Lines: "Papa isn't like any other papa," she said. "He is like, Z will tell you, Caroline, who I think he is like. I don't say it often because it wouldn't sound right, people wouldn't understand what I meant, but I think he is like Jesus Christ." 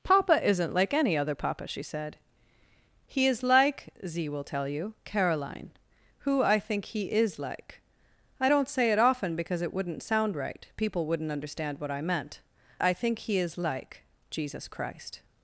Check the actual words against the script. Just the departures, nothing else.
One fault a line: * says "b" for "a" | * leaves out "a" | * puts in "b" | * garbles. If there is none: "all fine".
* leaves out "but"